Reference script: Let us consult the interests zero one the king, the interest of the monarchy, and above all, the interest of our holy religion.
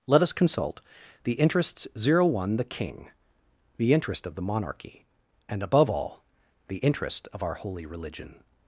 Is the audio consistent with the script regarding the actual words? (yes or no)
yes